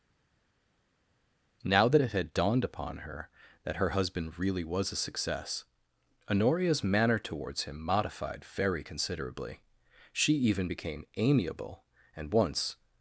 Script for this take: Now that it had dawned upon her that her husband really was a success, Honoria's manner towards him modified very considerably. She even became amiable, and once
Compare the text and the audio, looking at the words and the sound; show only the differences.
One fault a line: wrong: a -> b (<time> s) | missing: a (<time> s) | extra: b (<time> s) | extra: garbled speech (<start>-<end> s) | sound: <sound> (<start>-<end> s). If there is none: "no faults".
no faults